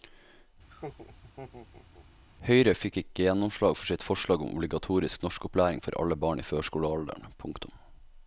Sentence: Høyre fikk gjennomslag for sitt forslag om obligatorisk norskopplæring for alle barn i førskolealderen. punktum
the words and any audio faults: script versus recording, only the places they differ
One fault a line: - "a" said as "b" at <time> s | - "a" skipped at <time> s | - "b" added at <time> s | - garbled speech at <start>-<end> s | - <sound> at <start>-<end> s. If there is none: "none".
- laugh at 0.7-2.1 s
- "ikke" added at 3.0 s